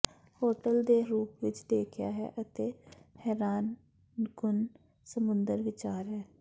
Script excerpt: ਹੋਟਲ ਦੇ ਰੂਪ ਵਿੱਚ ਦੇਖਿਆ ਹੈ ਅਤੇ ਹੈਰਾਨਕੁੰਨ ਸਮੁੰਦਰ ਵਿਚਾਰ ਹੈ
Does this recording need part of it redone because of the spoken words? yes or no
no